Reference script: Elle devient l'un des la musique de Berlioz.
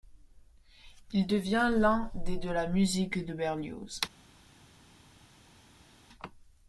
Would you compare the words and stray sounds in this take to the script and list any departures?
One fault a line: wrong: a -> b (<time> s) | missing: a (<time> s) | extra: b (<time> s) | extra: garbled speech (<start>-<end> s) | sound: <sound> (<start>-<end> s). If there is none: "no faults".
wrong: Elle -> Il (1.1 s)
extra: de (2.4 s)